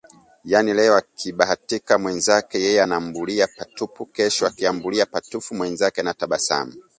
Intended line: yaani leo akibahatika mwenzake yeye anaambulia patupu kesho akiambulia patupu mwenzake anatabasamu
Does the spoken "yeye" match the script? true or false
true